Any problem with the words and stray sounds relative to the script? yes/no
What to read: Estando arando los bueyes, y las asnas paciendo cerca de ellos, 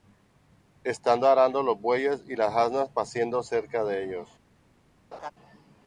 yes